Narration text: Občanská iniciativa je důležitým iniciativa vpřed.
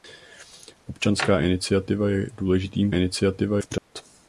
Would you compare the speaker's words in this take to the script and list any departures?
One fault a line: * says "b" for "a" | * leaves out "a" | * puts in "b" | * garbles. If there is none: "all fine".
all fine